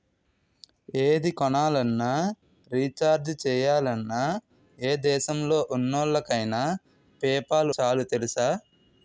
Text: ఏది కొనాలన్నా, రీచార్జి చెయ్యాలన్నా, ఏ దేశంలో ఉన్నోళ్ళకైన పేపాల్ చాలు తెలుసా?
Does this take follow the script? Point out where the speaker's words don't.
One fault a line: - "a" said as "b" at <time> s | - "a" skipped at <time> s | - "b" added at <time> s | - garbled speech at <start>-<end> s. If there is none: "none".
none